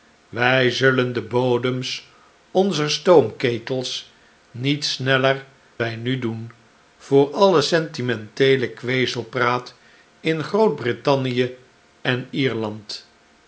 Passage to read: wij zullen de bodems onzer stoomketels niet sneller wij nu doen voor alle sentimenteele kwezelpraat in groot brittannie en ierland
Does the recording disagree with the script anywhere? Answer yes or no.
no